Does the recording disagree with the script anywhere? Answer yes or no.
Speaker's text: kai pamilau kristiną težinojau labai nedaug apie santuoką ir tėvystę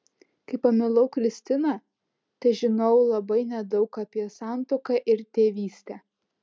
no